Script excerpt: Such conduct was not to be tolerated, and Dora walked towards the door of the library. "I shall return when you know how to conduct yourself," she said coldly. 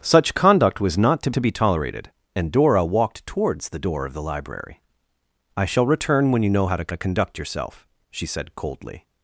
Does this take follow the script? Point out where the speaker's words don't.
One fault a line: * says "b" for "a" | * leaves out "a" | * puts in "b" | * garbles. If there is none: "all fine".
* puts in "to"
* puts in "to"